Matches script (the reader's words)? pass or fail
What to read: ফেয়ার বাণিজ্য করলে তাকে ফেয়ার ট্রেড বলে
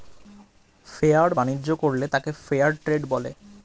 pass